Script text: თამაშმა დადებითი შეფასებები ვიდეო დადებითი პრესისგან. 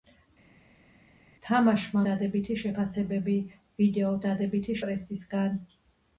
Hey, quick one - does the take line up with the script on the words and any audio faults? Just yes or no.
yes